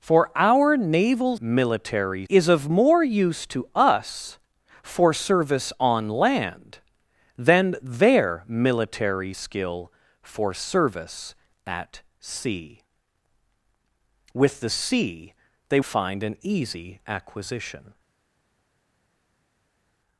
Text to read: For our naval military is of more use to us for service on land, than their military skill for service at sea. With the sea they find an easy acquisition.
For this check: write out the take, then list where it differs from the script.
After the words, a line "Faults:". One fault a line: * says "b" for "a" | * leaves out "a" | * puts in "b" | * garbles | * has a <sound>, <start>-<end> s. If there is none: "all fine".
For our naval military is of more use to us for service on land, than their military skill for service at sea. With the sea they find an easy acquisition.
Faults:
all fine